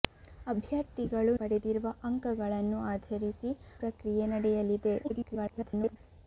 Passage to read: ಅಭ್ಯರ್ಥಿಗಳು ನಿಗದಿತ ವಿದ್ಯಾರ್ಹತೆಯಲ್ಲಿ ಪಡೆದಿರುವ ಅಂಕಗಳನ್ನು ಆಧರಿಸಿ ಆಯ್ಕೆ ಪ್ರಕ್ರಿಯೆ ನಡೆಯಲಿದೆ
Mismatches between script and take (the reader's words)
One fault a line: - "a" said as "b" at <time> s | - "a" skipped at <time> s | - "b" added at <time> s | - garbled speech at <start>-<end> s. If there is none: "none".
- "ನಿಗದಿತ ವಿದ್ಯಾರ್ಹತೆಯಲ್ಲಿ" skipped at 1.3 s
- "ಆಯ್ಕೆ" skipped at 3.5 s
- garbled speech at 5.0-6.0 s